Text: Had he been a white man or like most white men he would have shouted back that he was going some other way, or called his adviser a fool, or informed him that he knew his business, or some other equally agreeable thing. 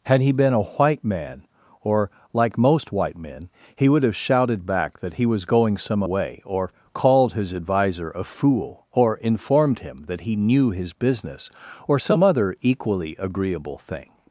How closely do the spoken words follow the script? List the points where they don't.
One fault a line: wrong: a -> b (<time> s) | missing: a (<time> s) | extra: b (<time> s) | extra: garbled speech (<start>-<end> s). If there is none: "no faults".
missing: other (6.0 s)